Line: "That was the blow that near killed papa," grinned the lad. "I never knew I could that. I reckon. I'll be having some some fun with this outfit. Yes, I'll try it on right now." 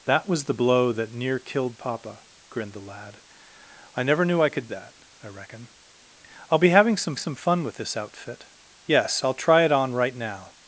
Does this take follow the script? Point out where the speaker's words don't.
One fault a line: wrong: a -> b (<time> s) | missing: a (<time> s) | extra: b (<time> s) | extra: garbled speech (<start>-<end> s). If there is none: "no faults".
no faults